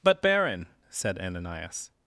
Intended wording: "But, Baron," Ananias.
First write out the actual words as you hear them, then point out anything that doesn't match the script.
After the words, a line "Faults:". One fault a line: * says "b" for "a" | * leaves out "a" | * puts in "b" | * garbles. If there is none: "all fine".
"But, Baron," said Ananias.
Faults:
* puts in "said"